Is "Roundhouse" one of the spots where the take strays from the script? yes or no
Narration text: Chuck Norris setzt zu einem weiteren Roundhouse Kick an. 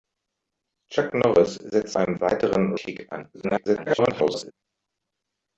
yes